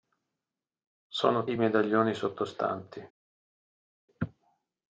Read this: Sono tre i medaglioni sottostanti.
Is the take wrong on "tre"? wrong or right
wrong